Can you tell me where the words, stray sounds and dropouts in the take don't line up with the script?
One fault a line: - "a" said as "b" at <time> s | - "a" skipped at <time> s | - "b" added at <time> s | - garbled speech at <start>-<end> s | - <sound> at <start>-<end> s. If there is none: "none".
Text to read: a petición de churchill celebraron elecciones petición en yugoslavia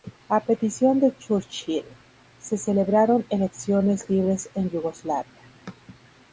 - "se" added at 2.4 s
- "petición" said as "libres" at 4.1 s